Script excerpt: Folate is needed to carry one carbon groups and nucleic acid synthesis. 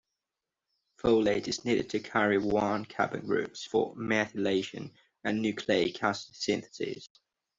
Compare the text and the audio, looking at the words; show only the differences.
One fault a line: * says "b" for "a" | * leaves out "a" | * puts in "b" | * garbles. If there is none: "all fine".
* puts in "for methylation"